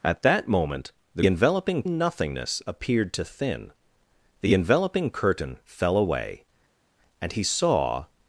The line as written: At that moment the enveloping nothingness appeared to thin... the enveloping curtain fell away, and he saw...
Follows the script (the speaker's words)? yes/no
yes